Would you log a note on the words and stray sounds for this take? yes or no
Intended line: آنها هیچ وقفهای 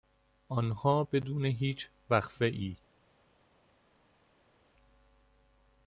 yes